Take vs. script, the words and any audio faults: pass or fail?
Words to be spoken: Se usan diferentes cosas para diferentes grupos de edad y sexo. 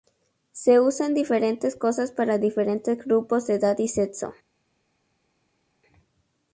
pass